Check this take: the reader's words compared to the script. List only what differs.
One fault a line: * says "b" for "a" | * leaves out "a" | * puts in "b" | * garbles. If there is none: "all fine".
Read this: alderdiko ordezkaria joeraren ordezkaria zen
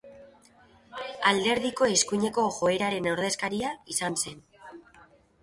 * says "eskuineko" for "ordezkaria"
* puts in "izan"